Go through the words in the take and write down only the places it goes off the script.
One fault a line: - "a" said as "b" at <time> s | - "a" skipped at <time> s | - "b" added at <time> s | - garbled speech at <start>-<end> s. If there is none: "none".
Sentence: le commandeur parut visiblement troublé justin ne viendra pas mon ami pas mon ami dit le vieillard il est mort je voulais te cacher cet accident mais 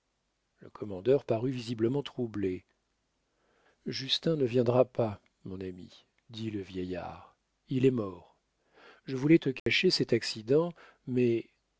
- "pas mon ami" skipped at 6.0 s